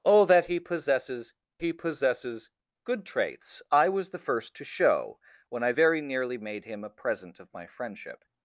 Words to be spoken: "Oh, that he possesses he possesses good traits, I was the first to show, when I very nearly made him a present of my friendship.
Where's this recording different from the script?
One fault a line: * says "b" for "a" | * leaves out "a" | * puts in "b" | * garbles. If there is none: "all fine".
all fine